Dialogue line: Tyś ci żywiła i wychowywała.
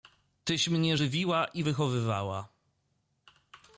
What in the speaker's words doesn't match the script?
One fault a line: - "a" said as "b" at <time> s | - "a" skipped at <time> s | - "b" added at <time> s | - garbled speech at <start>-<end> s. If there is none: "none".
- "ci" said as "mnie" at 0.7 s